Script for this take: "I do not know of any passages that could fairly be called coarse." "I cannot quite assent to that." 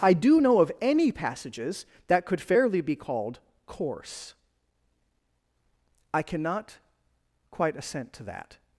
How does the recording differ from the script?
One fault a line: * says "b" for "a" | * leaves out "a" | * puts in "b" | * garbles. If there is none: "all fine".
* leaves out "not"